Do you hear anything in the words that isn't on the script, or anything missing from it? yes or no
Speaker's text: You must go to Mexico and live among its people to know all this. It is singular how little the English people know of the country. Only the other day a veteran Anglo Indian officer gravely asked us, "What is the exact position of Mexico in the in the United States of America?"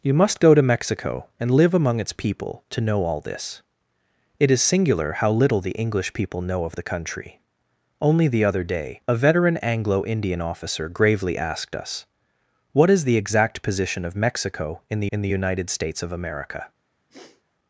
no